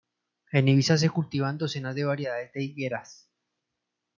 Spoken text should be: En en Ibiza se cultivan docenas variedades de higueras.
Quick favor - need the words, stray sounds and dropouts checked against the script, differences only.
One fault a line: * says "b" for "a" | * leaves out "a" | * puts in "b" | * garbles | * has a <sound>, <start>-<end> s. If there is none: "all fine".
* leaves out "en"
* puts in "de"